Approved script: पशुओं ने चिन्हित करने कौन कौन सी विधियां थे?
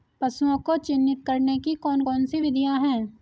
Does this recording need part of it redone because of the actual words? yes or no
yes